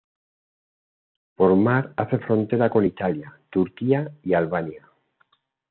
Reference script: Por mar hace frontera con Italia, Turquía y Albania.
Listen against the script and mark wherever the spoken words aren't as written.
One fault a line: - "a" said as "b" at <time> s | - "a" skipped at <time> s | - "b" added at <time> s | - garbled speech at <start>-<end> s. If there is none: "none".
none